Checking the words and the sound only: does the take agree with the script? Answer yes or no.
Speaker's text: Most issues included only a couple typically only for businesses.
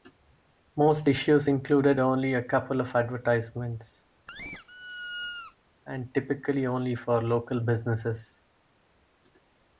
no